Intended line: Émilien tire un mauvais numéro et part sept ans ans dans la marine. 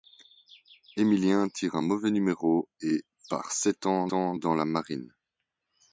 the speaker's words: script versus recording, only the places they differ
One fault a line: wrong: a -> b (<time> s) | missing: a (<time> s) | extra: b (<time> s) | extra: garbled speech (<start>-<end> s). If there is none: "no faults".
no faults